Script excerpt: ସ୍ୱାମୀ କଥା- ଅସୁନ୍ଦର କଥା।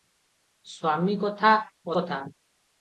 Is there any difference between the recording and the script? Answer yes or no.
yes